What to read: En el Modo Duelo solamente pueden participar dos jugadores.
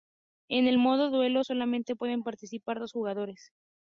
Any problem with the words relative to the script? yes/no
no